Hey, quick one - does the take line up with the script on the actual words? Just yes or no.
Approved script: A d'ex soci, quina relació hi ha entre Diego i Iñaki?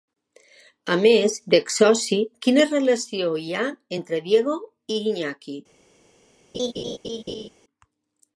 no